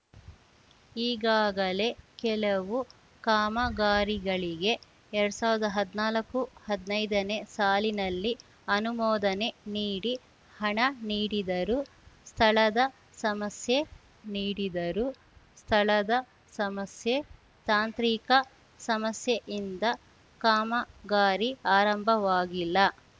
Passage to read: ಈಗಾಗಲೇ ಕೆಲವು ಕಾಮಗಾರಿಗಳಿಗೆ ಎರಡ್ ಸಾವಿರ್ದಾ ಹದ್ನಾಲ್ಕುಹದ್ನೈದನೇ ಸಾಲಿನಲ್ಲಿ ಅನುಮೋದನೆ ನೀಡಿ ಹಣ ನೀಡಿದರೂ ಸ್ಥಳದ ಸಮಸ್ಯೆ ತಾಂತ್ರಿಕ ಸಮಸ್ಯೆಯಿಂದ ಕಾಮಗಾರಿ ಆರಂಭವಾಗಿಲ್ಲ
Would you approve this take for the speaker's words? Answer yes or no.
no